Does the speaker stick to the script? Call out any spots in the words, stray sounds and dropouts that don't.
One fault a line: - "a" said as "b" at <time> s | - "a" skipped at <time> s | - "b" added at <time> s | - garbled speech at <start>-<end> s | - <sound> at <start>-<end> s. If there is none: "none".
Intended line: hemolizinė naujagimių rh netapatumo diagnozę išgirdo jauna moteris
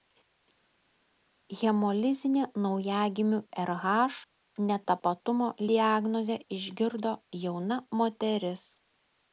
none